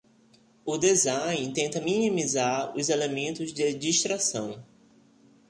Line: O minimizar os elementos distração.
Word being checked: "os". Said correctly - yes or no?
yes